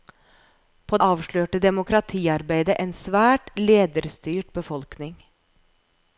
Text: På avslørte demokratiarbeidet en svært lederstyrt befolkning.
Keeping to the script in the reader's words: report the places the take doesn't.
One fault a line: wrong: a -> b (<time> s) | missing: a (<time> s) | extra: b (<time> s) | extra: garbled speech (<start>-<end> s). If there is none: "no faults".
no faults